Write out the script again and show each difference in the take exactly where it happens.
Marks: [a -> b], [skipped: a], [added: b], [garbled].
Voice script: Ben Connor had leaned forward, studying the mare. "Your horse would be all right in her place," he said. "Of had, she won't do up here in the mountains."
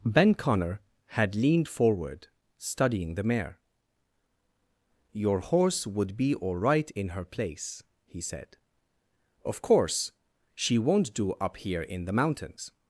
Ben Connor had leaned forward, studying the mare. "Your horse would be all right in her place," he said. "Of [had, -> course] she won't do up here in the mountains."